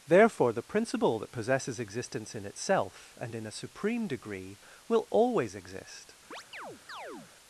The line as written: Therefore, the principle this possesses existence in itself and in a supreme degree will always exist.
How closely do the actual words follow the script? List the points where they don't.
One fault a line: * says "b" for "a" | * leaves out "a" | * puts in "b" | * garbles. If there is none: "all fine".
* says "that" for "this"